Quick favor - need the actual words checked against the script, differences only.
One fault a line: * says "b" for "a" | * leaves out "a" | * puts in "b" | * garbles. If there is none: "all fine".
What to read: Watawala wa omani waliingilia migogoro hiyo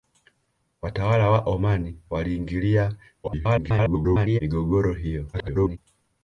* garbles
* garbles